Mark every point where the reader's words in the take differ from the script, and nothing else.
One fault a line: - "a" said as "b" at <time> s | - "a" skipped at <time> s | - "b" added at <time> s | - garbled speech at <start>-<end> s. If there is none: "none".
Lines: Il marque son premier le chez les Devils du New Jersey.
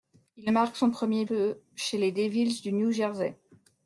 none